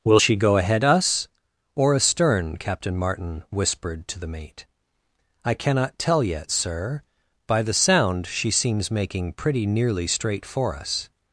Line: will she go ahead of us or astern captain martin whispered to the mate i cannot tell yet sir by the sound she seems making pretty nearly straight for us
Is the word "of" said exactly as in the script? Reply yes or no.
no